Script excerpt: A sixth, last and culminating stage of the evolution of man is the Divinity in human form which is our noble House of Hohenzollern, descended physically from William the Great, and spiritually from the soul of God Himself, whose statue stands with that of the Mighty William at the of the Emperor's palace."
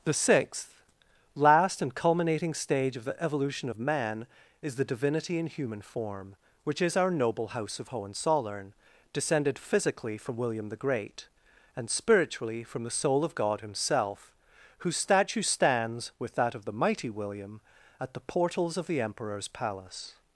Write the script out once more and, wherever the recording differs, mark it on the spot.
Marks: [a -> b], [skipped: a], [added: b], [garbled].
[A -> The] sixth, last and culminating stage of the evolution of man is the Divinity in human form which is our noble House of Hohenzollern, descended physically from William the Great, and spiritually from the soul of God Himself, whose statue stands with that of the Mighty William at the [added: portals] of the Emperor's palace."